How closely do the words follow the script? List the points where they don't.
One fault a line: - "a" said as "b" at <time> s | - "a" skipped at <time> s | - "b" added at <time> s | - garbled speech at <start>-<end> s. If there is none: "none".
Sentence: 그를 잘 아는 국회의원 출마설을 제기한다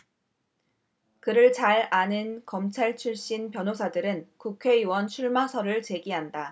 - "검찰 출신 변호사들은" added at 2.5 s